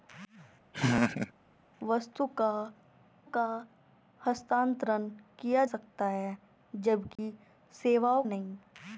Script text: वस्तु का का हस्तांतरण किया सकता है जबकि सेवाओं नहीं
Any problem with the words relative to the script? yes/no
no